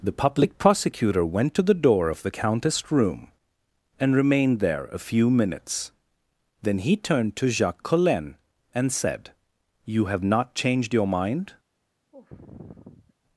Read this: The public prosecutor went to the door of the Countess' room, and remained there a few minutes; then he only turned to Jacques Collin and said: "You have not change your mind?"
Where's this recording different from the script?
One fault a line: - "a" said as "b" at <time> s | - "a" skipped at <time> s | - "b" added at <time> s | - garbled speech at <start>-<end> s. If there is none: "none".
- "only" skipped at 7.0 s
- "change" said as "changed" at 10.5 s